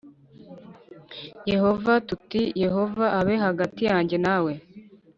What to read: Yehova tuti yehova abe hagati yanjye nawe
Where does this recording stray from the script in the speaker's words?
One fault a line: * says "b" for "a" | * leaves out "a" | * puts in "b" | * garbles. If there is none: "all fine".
all fine